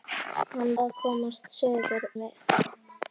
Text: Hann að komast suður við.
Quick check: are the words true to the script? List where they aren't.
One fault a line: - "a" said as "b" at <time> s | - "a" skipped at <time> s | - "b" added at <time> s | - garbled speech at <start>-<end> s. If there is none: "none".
none